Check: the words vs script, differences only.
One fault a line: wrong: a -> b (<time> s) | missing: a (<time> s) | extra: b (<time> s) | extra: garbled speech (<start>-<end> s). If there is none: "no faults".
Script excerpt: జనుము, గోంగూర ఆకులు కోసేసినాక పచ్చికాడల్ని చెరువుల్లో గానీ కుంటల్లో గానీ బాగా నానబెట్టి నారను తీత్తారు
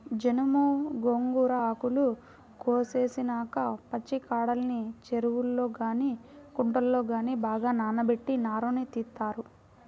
no faults